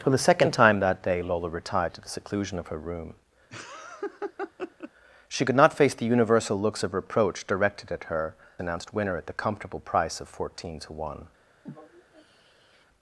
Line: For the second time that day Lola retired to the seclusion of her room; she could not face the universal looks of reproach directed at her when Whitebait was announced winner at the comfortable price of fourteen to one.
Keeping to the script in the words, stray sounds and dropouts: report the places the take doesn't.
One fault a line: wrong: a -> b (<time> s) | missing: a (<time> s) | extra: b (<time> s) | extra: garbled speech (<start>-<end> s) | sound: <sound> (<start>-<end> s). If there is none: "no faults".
sound: laugh (3.5-4.9 s)
missing: when Whitebait was (8.4 s)
sound: sigh (11.7-12.9 s)